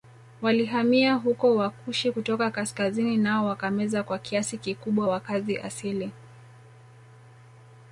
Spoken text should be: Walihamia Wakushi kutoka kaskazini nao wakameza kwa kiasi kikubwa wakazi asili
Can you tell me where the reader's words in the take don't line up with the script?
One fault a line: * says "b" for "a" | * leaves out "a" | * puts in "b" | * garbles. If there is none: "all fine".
* puts in "huko"